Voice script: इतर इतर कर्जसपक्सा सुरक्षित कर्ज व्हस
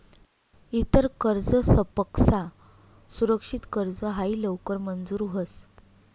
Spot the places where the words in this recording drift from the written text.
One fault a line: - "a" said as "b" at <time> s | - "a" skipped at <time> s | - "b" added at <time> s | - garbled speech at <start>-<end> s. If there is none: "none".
- "इतर" skipped at 1.1 s
- "हायी लवकर मंजूर" added at 4.1 s